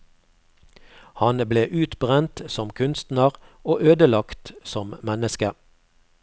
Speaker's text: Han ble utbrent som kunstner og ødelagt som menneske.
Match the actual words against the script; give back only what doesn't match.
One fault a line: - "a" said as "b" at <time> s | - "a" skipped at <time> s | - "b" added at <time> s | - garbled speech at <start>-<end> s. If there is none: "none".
none